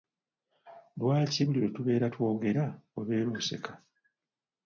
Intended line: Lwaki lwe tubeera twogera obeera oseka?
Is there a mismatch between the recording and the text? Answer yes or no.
yes